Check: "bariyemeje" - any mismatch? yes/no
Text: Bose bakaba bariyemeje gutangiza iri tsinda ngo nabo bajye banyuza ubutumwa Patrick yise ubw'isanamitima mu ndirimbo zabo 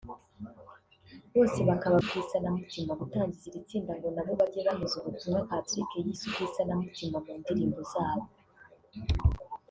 yes